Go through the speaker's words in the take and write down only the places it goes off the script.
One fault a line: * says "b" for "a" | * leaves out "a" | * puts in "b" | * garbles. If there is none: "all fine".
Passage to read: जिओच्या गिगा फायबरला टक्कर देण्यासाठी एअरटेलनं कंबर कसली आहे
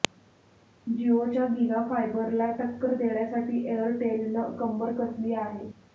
all fine